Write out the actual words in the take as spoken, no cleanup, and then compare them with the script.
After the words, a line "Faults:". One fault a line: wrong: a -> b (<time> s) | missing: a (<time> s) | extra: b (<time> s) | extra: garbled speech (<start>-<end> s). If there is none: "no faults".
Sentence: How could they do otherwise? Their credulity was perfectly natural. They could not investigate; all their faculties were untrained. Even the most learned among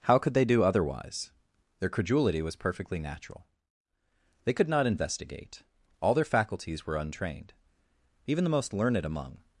How could they do otherwise? Their credulity was perfectly natural. They could not investigate; all their faculties were untrained. Even the most learned among
Faults:
no faults